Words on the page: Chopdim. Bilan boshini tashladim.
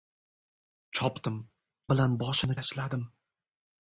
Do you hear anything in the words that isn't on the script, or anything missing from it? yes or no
no